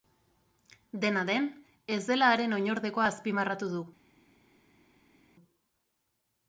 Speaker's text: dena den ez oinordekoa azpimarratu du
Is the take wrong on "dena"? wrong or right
right